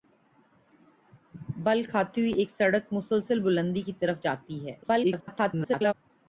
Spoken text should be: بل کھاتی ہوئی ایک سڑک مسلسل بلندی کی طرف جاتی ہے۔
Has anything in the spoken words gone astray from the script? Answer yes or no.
yes